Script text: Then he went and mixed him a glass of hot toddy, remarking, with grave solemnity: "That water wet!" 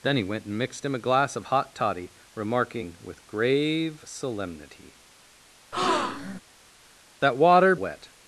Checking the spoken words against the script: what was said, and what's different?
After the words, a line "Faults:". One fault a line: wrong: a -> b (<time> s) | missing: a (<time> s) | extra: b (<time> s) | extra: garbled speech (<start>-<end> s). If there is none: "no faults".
Then he went and mixed him a glass of hot toddy, remarking, with grave solemnity: "That water wet!"
Faults:
no faults